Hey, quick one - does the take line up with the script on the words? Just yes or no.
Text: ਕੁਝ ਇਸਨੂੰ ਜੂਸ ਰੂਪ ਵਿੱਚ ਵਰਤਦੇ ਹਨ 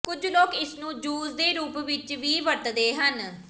no